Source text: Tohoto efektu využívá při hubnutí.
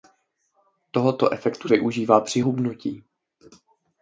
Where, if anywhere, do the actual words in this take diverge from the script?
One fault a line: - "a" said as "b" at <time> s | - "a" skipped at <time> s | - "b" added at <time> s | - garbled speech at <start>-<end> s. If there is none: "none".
none